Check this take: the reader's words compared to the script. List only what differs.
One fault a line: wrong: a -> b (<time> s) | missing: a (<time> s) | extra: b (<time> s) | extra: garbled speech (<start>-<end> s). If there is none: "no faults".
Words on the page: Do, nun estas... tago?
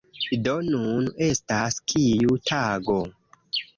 extra: kiu (1.9 s)